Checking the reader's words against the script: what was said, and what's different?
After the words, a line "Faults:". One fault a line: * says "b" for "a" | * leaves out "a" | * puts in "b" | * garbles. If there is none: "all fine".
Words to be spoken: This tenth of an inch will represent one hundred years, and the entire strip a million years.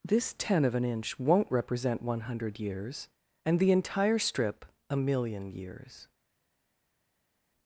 This ten of an inch won't represent one hundred years, and the entire strip a million years.
Faults:
* says "ten" for "tenth"
* says "won't" for "will"